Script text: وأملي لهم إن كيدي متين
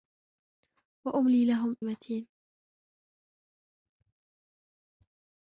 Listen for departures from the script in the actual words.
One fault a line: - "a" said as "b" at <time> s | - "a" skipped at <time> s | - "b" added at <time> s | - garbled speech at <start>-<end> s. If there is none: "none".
- "إن كيدي" skipped at 1.8 s